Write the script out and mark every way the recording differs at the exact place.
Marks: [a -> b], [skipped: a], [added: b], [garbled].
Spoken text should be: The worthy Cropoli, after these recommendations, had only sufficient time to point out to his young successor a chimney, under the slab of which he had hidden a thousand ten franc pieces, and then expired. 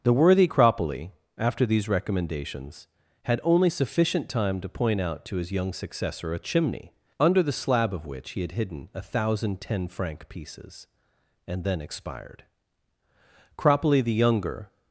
The worthy Cropoli, after these recommendations, had only sufficient time to point out to his young successor a chimney, under the slab of which he had hidden a thousand ten franc pieces, and then expired. [added: Cropoli the younger]